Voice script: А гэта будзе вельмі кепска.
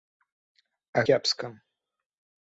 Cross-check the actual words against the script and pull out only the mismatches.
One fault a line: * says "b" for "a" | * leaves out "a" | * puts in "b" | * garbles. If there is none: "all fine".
* leaves out "гэта будзе вельмі"